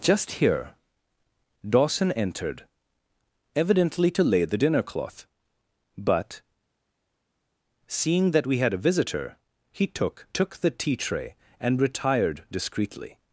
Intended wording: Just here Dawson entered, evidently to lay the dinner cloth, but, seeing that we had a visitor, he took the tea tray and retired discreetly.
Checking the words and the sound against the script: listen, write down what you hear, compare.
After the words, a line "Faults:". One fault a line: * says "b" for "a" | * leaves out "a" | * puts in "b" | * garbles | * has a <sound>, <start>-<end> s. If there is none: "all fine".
Just here Dawson entered, evidently to lay the dinner cloth, but, seeing that we had a visitor, he took took the tea tray and retired discreetly.
Faults:
* puts in "took"